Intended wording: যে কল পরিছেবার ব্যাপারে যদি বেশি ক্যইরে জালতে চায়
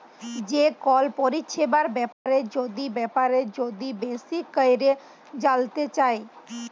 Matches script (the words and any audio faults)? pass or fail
fail